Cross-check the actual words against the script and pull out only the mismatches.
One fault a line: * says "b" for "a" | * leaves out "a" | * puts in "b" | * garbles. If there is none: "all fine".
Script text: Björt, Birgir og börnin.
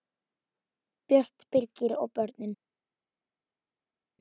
all fine